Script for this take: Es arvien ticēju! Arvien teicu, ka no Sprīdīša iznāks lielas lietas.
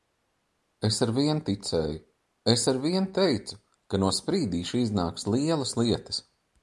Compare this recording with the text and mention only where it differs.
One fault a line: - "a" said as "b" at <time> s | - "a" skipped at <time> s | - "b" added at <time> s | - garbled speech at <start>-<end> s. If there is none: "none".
- "Es" added at 2.5 s